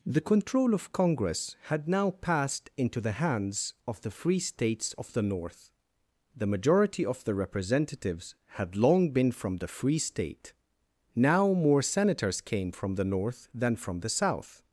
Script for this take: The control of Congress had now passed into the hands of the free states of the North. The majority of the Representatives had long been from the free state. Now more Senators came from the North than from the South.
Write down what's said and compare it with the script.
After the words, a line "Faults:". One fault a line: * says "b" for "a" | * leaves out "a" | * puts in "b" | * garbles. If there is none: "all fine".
The control of Congress had now passed into the hands of the free states of the North. The majority of the Representatives had long been from the free state. Now more Senators came from the North than from the South.
Faults:
all fine